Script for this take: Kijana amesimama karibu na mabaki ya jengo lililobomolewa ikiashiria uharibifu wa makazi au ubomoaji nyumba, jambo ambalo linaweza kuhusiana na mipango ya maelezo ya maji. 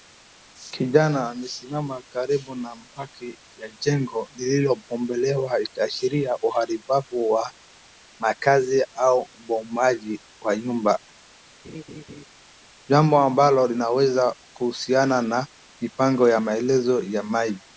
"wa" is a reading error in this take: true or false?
false